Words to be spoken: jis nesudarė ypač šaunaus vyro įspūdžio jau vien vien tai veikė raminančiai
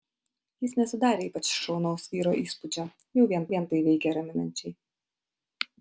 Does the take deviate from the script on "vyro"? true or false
false